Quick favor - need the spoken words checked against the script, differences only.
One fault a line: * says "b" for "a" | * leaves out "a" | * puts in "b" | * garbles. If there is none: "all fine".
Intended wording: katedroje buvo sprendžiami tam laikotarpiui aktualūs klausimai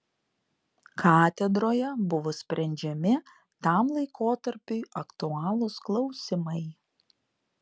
all fine